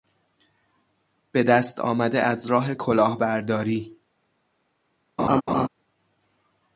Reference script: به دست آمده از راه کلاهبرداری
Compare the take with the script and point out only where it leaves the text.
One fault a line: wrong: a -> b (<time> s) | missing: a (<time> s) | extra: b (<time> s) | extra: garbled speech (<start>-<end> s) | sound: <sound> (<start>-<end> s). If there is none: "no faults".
sound: laugh (5.2-5.7 s)